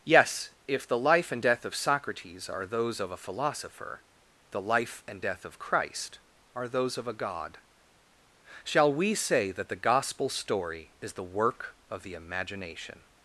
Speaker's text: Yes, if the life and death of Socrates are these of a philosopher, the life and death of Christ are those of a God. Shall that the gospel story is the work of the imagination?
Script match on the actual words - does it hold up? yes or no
no